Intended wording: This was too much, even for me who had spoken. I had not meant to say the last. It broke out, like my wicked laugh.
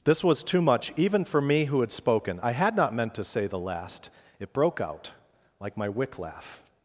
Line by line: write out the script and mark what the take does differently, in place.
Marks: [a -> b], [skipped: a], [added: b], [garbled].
This was too much, even for me who had spoken. I had not meant to say the last. It broke out, like my [wicked -> wick] laugh.